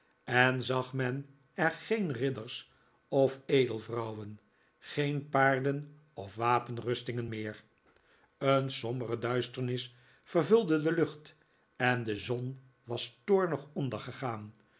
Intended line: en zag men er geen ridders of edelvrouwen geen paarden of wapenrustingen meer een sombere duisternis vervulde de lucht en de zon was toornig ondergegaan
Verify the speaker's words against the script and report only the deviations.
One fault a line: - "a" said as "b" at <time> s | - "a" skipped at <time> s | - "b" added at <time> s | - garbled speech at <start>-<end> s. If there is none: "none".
none